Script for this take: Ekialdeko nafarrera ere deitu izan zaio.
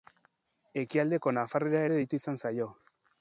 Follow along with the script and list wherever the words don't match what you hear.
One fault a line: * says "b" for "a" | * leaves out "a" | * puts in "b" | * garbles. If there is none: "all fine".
all fine